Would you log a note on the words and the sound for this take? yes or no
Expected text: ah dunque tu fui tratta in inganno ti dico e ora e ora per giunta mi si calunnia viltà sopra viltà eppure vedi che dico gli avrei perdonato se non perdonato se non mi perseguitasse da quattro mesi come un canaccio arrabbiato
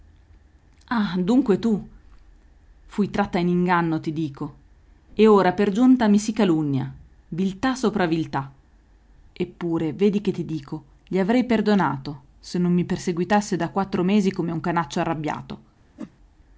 yes